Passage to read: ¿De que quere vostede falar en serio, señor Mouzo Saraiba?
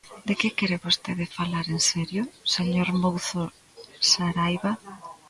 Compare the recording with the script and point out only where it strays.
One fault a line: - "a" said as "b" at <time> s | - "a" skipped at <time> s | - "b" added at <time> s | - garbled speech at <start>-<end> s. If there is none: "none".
none